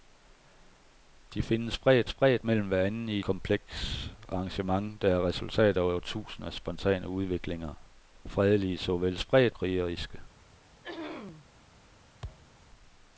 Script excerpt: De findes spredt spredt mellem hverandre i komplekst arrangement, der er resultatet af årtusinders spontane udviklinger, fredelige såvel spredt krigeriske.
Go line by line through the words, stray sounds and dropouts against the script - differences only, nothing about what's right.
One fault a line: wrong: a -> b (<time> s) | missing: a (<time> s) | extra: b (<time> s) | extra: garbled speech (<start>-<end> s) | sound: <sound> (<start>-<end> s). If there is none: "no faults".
sound: throat clearing (10.8-11.5 s)
sound: thud (12.2-12.5 s)